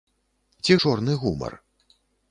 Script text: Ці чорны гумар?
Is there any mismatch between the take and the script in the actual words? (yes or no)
no